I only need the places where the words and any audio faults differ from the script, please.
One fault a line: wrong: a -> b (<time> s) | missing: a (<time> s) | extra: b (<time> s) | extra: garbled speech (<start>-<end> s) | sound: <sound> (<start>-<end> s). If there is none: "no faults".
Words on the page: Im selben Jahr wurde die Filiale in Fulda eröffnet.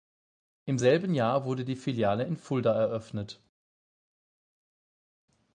no faults